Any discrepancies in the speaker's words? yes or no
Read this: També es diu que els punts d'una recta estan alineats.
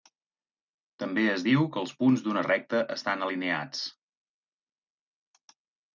no